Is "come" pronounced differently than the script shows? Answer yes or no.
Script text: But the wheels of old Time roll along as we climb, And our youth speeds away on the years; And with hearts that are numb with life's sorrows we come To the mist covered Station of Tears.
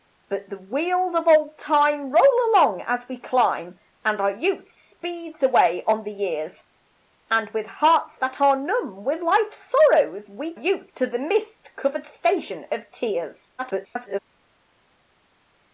yes